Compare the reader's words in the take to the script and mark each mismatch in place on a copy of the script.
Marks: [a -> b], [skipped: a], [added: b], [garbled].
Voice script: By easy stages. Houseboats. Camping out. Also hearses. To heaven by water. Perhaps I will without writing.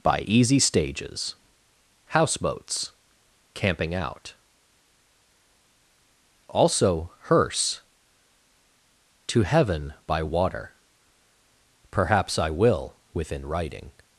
By easy stages. Houseboats. Camping out. Also [hearses. -> hearse] To heaven by water. Perhaps I will [without -> within] writing.